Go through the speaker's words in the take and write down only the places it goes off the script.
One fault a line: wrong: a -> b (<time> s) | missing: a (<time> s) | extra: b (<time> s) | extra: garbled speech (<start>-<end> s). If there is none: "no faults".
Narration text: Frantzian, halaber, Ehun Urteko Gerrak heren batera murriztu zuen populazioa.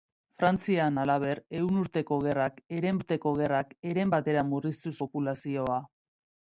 extra: Urteko Gerrak heren (3.0 s)
missing: zuen (5.0 s)